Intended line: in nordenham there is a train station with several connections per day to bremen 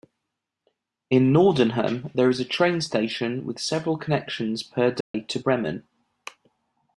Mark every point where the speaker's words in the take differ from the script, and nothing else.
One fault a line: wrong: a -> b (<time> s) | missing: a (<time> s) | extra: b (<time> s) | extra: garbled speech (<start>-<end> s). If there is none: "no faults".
no faults